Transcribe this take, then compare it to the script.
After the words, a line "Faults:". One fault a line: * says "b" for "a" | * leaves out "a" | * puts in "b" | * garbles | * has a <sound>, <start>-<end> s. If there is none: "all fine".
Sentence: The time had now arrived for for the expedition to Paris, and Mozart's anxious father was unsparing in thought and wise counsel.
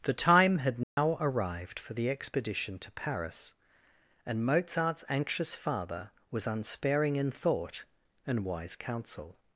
The time had now arrived for the expedition to Paris, and Mozart's anxious father was unsparing in thought and wise counsel.
Faults:
* has a dropout, 0.8-1.0 s
* leaves out "for"